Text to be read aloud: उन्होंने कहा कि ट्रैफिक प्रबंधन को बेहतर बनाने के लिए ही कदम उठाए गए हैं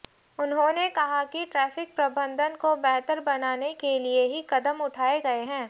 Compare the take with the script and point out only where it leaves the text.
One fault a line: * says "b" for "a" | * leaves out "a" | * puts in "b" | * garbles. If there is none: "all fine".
all fine